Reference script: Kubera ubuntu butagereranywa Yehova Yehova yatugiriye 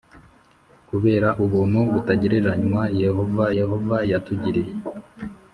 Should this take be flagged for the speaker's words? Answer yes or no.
no